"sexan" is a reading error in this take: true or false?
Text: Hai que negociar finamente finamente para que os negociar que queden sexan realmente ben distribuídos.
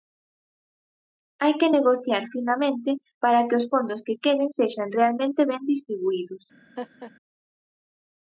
false